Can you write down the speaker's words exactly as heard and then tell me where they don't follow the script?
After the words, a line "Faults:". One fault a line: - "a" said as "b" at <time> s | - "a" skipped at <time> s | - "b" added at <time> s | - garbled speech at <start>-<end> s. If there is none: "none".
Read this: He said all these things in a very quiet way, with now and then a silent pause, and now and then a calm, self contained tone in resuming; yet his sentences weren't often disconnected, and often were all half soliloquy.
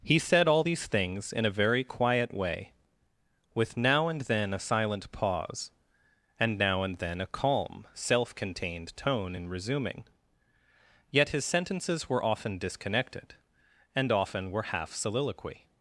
He said all these things in a very quiet way, with now and then a silent pause, and now and then a calm, self contained tone in resuming; yet his sentences were often disconnected, and often were half soliloquy.
Faults:
- "weren't" said as "were" at 12.1 s
- "all" skipped at 14.6 s